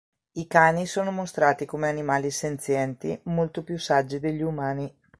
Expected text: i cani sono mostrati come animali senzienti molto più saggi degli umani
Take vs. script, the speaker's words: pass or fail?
pass